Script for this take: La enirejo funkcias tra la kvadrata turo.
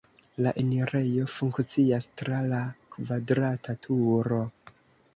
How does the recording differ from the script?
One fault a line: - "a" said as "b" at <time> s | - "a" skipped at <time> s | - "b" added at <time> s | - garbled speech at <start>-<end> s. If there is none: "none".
none